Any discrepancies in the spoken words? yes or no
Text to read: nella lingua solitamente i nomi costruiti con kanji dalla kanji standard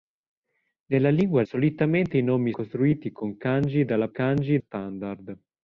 no